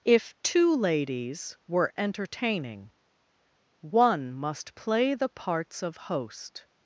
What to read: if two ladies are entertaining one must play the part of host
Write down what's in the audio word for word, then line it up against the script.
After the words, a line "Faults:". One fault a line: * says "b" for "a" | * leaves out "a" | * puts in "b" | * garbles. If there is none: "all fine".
if two ladies were entertaining one must play the parts of host
Faults:
* says "were" for "are"
* says "parts" for "part"